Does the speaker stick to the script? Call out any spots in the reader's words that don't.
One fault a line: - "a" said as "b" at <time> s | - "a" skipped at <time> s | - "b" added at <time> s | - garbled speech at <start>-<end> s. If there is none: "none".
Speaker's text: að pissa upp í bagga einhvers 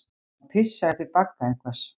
none